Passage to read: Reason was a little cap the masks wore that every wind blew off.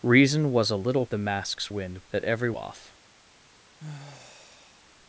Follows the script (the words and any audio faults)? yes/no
no